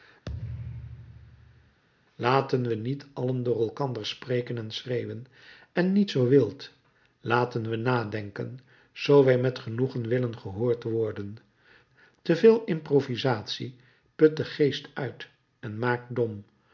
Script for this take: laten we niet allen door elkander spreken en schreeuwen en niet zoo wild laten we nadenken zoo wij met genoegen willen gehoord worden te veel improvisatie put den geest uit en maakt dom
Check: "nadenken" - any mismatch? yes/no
no